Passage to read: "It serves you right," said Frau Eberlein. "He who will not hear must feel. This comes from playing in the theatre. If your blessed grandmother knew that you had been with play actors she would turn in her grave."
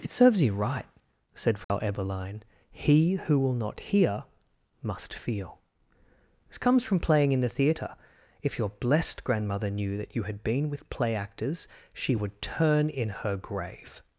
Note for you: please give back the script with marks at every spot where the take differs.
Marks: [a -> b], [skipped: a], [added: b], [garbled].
"It serves you right," said Frau Eberlein. "He who will not hear must feel. This comes from playing in the theatre. If your blessed grandmother knew that you had been with play actors she would turn in her grave."